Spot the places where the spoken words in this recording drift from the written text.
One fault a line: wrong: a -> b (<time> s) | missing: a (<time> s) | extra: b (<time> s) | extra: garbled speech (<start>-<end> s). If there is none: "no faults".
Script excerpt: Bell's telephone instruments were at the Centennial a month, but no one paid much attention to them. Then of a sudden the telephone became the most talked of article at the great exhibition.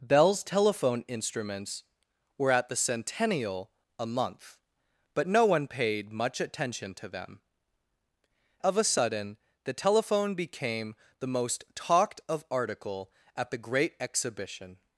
missing: Then (7.4 s)